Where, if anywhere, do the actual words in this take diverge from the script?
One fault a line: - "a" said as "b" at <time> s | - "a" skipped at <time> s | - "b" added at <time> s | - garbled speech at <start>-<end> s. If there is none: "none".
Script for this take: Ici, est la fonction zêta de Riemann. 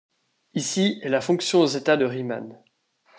none